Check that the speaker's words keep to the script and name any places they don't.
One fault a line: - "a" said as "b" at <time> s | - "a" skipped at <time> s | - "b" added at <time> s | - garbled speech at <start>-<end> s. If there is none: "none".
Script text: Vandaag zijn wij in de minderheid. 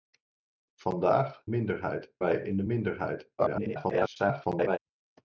- "zijn" said as "minderheid" at 1.4 s
- garbled speech at 3.4-4.8 s